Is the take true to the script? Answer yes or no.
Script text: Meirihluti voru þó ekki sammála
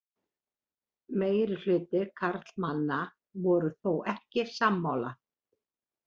no